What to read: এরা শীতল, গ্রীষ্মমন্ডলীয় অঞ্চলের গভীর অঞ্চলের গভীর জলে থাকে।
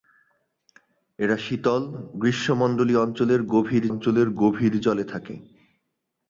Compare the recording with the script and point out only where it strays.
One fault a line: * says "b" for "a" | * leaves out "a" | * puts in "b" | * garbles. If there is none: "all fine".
all fine